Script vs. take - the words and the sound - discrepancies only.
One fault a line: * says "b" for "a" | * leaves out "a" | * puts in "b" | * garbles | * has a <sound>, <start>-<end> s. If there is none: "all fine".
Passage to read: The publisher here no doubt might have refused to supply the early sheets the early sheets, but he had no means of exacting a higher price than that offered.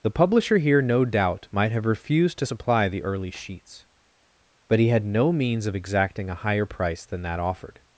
* leaves out "the early sheets"